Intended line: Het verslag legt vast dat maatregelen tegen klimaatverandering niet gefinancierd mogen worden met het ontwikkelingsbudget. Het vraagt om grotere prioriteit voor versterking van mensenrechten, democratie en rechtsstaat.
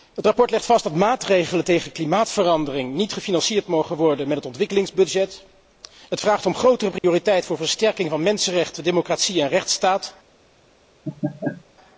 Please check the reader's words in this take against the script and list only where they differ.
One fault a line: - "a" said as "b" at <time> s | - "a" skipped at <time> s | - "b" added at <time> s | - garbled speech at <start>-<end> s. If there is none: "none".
none